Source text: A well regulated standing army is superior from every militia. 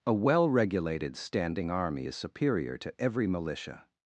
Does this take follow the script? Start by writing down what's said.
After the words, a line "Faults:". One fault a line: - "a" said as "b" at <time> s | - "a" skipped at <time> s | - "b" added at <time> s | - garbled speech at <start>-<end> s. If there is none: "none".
A well regulated standing army is superior to every militia.
Faults:
- "from" said as "to" at 2.8 s